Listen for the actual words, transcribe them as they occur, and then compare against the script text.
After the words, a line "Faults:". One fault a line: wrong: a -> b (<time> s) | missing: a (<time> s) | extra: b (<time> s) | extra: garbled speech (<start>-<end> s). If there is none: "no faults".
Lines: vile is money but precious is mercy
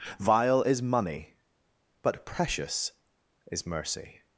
vile is money but precious is mercy
Faults:
no faults